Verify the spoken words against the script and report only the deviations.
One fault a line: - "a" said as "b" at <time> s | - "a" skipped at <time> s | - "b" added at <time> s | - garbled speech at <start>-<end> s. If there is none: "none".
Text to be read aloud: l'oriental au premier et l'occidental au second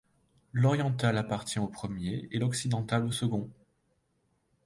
- "appartient" added at 1.1 s